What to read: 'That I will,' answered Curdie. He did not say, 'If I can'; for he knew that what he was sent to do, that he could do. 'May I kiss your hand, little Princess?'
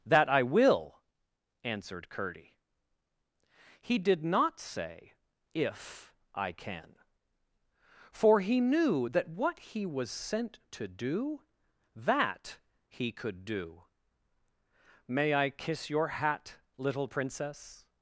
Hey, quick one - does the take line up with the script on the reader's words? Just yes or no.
no